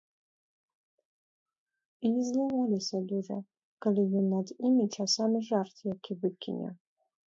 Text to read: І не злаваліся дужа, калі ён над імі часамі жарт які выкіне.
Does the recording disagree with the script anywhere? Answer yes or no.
no